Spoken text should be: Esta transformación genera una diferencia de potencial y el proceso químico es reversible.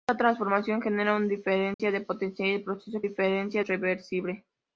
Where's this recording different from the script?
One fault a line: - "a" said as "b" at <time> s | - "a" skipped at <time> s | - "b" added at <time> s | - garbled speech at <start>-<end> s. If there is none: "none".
- "químico" said as "diferencia" at 3.0 s